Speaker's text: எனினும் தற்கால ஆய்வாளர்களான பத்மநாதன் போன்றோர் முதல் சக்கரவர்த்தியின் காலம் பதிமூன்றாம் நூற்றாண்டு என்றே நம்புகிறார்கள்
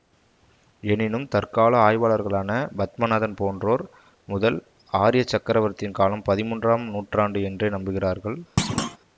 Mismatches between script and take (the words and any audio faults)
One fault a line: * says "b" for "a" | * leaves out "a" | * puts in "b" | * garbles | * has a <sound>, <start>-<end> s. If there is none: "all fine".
* puts in "ஆரிய"
* has a thud, 8.6-9.0 s